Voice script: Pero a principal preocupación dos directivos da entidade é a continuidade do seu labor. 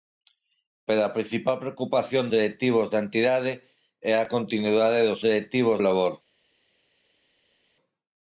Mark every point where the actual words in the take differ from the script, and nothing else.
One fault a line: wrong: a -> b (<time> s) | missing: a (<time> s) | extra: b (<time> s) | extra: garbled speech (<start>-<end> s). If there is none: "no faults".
missing: dos (2.2 s)
wrong: seu -> directivos (5.3 s)